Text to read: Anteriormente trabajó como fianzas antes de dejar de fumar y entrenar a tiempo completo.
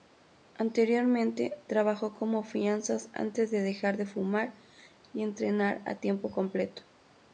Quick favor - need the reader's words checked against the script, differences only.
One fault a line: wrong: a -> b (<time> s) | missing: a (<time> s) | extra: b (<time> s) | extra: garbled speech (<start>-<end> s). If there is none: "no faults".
no faults